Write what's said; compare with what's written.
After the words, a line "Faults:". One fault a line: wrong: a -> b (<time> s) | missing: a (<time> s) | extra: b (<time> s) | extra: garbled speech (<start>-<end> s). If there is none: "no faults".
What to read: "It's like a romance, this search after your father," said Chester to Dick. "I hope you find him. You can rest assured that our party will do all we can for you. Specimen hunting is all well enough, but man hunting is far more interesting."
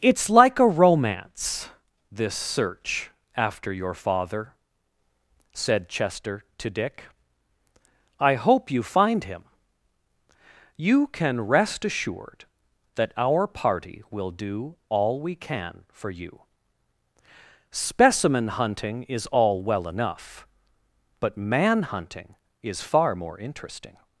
"It's like a romance, this search after your father," said Chester to Dick. "I hope you find him. You can rest assured that our party will do all we can for you. Specimen hunting is all well enough, but man hunting is far more interesting."
Faults:
no faults